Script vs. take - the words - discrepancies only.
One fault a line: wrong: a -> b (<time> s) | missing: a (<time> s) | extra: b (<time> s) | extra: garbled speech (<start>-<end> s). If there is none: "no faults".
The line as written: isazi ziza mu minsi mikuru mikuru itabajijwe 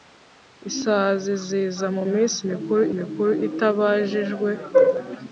no faults